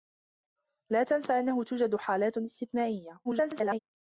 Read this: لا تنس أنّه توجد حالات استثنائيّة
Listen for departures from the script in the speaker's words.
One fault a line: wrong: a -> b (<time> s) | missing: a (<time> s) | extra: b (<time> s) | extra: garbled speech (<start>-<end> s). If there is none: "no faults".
extra: garbled speech (3.2-3.8 s)